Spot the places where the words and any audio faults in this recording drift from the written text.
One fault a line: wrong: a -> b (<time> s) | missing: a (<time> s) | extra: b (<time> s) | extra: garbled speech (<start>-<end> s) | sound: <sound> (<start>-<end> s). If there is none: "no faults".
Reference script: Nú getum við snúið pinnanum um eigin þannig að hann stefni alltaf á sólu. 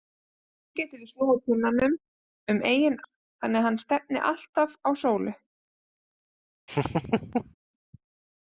sound: laugh (6.7-7.5 s)